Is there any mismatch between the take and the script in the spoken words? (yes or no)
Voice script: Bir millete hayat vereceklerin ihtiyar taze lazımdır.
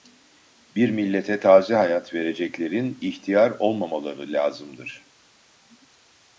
yes